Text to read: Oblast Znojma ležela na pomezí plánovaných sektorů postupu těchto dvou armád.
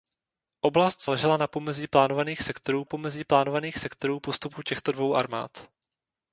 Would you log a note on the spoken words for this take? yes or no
yes